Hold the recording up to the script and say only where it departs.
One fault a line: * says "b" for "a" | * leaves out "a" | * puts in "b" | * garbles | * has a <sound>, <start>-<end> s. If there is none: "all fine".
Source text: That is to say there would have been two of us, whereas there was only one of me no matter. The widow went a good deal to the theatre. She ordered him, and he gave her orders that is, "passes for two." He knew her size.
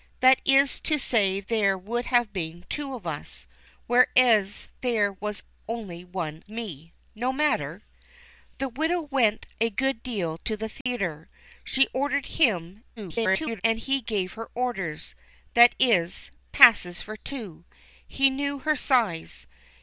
* leaves out "of"
* has a dropout, 10.8-10.9 s
* garbles